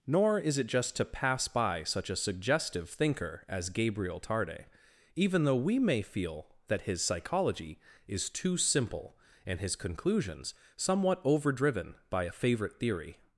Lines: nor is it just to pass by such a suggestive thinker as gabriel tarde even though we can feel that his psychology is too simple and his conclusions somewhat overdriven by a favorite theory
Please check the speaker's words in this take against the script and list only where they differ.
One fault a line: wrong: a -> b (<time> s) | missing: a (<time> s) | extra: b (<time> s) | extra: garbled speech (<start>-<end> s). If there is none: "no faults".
wrong: can -> may (5.8 s)